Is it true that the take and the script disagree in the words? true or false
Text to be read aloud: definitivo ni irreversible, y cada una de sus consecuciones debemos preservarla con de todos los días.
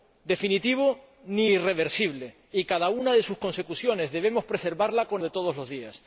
false